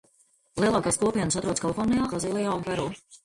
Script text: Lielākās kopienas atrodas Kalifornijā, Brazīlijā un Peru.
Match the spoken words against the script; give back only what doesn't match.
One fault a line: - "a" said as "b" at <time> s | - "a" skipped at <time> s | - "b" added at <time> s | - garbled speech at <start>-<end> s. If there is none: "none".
none